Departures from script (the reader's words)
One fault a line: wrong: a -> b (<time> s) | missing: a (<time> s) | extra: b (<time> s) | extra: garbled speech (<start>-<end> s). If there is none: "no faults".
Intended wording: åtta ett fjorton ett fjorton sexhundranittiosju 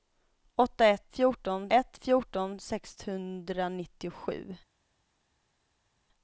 no faults